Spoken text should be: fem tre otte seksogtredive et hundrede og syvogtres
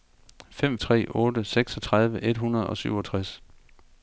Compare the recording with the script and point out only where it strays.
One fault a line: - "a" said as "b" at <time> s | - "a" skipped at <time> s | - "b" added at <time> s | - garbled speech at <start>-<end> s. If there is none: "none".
none